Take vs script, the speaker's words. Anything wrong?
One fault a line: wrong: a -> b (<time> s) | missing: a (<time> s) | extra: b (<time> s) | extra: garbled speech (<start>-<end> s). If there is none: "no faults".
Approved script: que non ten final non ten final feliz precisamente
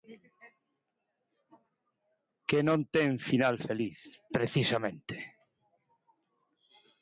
missing: non ten final (3.5 s)